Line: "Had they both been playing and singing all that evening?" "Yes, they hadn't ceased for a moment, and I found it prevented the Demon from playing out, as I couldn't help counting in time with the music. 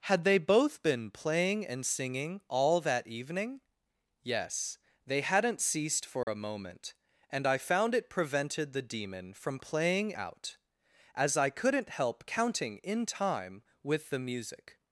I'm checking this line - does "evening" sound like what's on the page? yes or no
yes